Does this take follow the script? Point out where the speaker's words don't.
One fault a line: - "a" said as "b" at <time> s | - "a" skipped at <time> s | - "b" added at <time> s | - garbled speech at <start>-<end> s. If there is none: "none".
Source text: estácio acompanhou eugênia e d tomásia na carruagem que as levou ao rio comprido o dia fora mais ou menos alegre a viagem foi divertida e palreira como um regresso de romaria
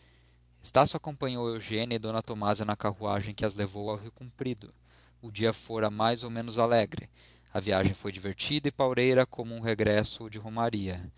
none